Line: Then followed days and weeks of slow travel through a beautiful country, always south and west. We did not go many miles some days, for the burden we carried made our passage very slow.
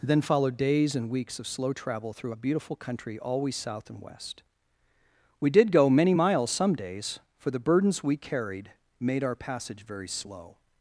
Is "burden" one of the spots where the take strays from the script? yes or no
yes